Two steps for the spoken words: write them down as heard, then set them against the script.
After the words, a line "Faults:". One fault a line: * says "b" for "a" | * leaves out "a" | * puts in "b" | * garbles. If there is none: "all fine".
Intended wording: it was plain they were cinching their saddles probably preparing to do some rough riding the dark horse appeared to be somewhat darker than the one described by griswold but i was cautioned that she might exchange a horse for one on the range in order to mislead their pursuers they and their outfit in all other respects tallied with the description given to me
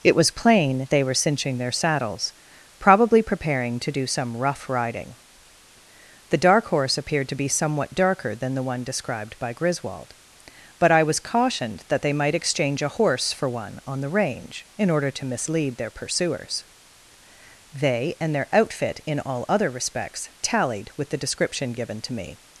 it was plain they were cinching their saddles probably preparing to do some rough riding the dark horse appeared to be somewhat darker than the one described by griswold but i was cautioned that they might exchange a horse for one on the range in order to mislead their pursuers they and their outfit in all other respects tallied with the description given to me
Faults:
* says "they" for "she"